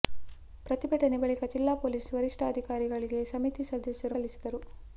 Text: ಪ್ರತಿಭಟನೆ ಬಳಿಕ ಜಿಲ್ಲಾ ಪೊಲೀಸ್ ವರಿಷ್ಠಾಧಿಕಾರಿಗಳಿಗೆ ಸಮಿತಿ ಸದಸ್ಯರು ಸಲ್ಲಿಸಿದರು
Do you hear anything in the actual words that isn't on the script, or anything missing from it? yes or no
no